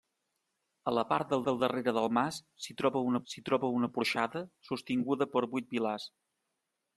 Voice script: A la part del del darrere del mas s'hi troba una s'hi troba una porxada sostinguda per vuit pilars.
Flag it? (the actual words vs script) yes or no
no